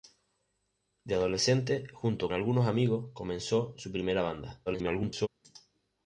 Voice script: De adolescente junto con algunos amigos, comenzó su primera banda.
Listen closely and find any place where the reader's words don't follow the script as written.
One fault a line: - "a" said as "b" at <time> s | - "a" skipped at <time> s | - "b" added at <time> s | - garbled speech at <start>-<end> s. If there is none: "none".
- "con" skipped at 2.3 s
- garbled speech at 4.7-5.3 s